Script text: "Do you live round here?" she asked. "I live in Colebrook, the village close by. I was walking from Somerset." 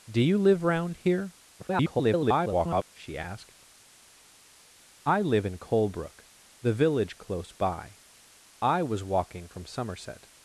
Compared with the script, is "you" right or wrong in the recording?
right